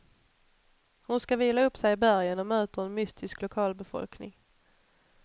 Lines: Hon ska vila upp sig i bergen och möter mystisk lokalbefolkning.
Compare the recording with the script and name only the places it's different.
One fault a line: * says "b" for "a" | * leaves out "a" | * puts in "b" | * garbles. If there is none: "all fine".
* puts in "en"